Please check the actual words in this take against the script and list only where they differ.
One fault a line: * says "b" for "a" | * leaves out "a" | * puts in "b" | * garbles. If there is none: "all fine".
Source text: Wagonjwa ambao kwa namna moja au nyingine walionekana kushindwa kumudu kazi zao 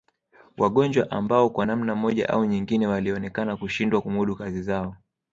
all fine